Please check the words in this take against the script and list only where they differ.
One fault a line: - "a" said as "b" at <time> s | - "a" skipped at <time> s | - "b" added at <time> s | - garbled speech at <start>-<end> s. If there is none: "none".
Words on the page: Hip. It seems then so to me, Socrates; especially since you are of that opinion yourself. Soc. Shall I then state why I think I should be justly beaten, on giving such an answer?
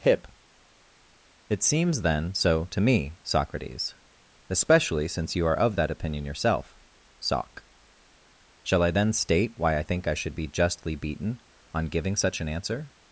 none